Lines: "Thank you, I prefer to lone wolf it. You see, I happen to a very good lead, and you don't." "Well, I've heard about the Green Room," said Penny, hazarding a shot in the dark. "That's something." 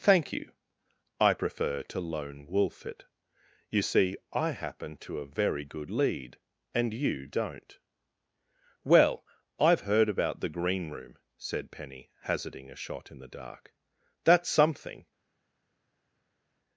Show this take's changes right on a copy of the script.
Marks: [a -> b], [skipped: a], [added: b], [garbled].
"Thank you, I prefer to lone wolf it. You see, I happen to a very good lead, and you don't." "Well, I've heard about the Green Room," said Penny, hazarding a shot in the dark. "That's something."